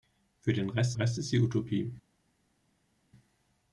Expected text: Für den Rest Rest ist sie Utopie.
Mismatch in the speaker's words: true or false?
false